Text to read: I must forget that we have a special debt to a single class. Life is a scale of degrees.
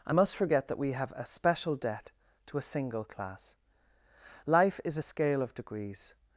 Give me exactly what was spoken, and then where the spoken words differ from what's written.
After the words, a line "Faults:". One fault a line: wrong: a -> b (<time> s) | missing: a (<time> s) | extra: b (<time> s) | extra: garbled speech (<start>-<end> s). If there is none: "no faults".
I must forget that we have a special debt to a single class. Life is a scale of degrees.
Faults:
no faults